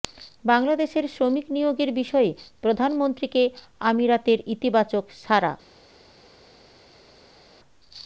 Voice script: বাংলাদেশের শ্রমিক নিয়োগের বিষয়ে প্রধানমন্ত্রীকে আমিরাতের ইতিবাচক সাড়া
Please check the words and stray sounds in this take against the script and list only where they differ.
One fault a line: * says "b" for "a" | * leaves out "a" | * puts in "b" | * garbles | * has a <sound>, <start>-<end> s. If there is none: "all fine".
all fine